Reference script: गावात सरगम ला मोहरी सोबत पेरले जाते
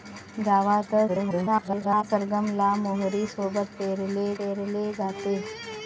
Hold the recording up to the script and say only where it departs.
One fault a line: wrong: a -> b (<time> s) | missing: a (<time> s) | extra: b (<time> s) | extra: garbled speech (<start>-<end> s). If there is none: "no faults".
extra: garbled speech (1.1-2.0 s)
extra: पेरले (4.4 s)